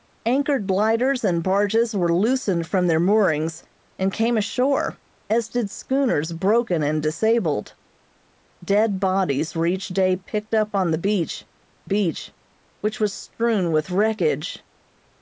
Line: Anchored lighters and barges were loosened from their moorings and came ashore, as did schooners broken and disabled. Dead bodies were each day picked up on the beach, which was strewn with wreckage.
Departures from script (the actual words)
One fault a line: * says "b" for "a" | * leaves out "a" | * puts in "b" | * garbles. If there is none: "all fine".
* puts in "beach"